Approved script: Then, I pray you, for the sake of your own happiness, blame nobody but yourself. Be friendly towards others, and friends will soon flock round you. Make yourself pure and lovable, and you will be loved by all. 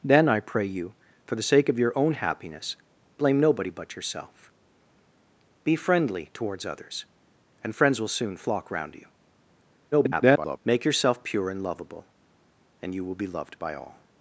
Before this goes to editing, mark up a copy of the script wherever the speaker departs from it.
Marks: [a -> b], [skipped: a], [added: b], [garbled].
Then, I pray you, for the sake of your own happiness, blame nobody but yourself. Be friendly towards others, and friends will soon flock round you. [garbled] Make yourself pure and lovable, and you will be loved by all.